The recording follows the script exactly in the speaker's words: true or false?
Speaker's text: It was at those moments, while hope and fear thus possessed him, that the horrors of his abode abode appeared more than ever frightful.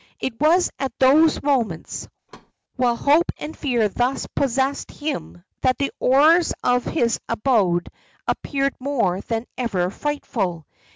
false